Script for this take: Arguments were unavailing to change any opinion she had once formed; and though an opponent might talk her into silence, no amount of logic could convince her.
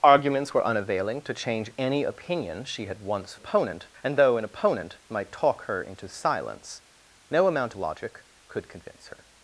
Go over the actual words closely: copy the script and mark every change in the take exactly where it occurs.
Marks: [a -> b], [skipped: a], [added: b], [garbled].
Arguments were unavailing to change any opinion she had once [formed; -> opponent] and though an opponent might talk her into silence, no amount [skipped: of] logic could convince her.